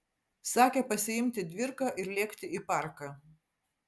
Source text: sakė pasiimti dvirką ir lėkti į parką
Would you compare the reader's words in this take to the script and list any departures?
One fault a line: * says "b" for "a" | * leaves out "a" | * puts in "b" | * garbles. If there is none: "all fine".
all fine